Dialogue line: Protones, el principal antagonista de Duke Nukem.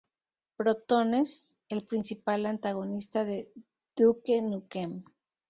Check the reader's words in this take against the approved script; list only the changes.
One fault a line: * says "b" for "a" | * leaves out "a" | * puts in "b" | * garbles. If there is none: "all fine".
all fine